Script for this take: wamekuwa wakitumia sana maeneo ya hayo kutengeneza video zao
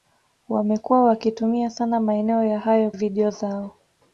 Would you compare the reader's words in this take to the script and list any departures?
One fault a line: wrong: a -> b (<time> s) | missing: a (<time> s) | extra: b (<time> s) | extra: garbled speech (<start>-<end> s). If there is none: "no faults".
missing: kutengeneza (2.9 s)